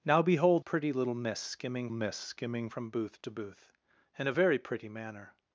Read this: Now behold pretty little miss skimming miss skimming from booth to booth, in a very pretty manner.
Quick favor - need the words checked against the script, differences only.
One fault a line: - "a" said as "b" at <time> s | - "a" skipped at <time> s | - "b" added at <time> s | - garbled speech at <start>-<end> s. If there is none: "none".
none